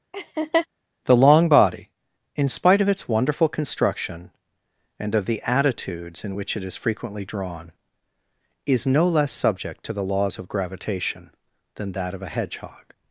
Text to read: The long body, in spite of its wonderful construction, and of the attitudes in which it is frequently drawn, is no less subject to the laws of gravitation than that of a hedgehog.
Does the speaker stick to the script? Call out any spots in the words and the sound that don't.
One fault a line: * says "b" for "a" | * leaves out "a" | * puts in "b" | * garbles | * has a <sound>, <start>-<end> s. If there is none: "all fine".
* has a laugh, 0.1-0.7 s